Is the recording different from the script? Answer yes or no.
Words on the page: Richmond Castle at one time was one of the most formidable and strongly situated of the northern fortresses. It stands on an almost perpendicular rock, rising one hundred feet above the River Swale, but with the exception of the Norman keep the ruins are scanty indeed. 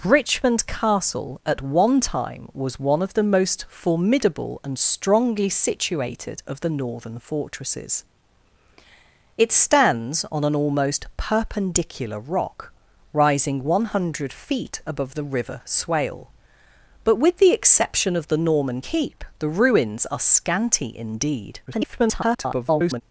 yes